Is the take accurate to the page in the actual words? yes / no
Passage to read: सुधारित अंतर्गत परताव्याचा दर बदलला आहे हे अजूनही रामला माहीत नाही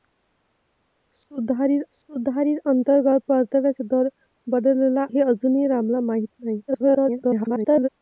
no